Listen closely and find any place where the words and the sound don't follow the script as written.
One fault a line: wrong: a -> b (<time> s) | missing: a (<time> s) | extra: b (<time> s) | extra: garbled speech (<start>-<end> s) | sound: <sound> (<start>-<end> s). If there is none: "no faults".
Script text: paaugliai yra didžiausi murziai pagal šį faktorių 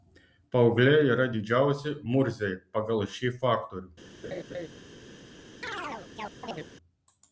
sound: laugh (4.2-4.7 s)
sound: chirp (5.6-6.7 s)